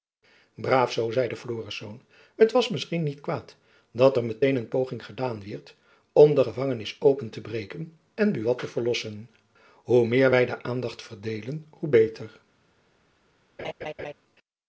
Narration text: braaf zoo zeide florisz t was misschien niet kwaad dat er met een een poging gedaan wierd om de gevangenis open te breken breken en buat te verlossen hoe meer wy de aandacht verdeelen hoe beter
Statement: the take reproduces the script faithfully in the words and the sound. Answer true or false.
false